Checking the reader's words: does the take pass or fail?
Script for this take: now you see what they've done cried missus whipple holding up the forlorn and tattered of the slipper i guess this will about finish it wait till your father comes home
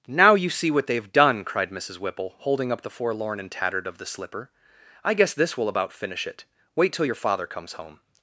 pass